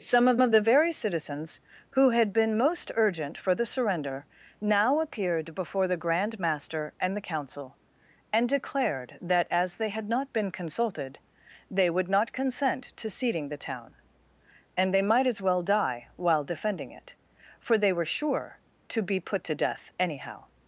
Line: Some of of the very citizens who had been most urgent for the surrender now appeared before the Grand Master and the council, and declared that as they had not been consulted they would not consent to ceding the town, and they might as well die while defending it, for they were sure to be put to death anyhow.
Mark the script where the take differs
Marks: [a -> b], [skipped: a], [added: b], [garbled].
Some of of the very citizens who had been most urgent for the surrender now appeared before the Grand Master and the council, and declared that as they had not been consulted they would not consent to ceding the town, and they might as well die while defending it, for they were sure to be put to death anyhow.